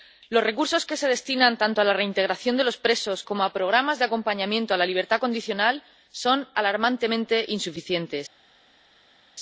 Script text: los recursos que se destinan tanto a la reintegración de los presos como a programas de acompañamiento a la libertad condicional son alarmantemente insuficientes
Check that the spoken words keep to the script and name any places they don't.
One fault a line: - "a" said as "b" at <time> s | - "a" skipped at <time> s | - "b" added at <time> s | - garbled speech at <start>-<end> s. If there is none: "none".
none